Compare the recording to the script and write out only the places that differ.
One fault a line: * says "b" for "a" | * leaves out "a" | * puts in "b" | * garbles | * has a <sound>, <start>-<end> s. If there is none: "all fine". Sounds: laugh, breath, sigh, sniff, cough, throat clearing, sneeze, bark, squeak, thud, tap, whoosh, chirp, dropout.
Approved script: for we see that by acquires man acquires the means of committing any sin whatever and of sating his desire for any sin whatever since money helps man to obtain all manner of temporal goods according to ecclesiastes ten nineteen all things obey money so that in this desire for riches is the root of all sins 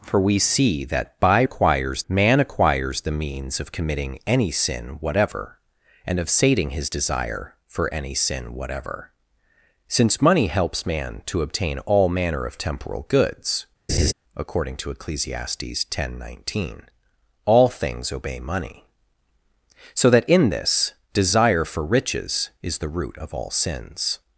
* has a laugh, 13.9-14.1 s